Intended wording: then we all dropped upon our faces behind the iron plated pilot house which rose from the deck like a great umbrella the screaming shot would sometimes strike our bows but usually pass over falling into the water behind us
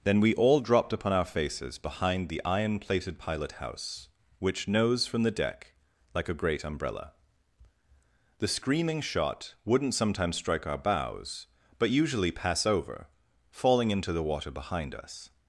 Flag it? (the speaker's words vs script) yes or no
yes